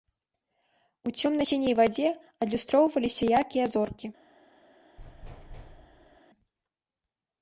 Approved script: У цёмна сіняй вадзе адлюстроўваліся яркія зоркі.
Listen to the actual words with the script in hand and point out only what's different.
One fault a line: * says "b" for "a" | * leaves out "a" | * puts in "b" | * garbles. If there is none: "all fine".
all fine